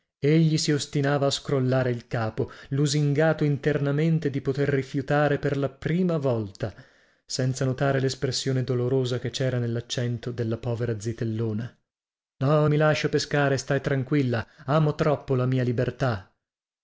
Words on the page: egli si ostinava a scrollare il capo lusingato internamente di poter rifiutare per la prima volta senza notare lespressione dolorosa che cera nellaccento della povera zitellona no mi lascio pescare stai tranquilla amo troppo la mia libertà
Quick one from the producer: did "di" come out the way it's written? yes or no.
yes